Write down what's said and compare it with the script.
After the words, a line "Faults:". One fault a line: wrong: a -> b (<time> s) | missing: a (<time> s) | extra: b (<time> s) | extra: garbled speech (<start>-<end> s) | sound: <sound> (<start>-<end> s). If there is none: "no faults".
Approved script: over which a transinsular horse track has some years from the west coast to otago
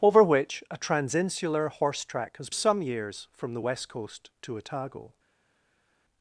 over which a transinsular horse track has some years from the west coast to otago
Faults:
no faults